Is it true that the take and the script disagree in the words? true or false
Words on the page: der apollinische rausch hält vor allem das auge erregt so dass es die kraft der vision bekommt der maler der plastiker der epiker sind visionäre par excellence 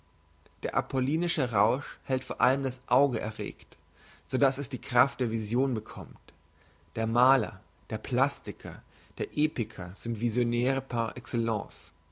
false